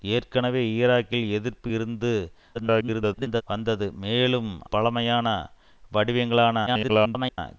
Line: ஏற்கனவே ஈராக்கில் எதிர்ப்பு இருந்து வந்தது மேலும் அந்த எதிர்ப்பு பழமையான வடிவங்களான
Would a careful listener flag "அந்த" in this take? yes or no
yes